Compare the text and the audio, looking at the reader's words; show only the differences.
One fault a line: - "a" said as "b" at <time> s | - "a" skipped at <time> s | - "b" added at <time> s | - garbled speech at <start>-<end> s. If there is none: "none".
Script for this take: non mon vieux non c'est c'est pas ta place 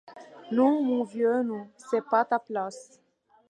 - "c'est" skipped at 2.0 s